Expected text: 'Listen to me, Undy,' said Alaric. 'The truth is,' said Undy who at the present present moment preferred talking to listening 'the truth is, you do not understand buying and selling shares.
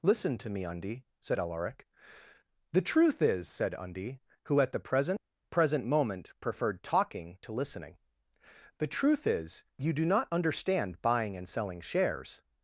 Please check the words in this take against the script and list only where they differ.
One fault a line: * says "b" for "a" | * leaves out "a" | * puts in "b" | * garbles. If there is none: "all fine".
all fine